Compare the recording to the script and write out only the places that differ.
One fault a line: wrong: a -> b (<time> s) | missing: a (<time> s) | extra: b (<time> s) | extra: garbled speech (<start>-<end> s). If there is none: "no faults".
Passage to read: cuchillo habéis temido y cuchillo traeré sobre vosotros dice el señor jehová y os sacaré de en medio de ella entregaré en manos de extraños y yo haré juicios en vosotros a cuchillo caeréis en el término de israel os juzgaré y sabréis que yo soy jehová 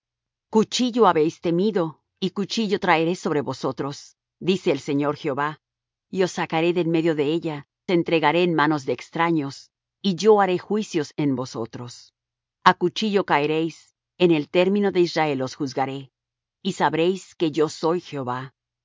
no faults